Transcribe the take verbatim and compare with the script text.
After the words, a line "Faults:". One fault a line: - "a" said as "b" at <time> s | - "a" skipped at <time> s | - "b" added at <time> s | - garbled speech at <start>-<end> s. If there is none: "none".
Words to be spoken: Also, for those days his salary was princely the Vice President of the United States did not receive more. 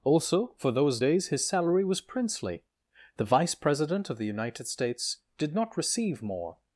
Also, for those days his salary was princely the Vice President of the United States did not receive more.
Faults:
none